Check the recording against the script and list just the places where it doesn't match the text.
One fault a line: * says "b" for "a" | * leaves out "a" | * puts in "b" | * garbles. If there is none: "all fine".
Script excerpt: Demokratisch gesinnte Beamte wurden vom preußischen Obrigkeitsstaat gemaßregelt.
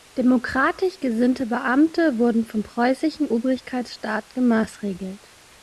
all fine